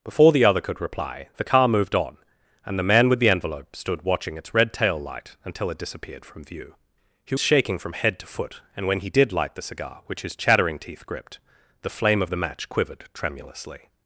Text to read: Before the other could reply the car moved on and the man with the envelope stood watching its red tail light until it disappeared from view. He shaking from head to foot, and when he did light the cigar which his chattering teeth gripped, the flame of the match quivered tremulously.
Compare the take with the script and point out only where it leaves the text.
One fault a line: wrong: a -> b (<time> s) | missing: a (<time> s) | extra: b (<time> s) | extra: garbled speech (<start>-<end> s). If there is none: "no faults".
no faults